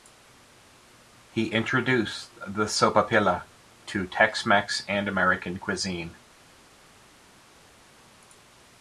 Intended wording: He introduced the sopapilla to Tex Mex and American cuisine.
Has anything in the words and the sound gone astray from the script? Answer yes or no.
no